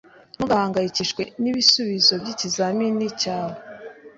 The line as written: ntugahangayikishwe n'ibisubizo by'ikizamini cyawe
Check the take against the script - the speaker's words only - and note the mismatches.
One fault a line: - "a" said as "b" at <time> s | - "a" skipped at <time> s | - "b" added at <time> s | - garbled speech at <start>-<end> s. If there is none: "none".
none